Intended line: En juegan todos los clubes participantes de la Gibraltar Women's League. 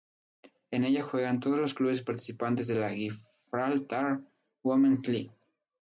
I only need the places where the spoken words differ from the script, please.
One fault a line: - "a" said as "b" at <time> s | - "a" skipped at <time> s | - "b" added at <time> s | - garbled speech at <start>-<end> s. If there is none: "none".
- "ella" added at 0.8 s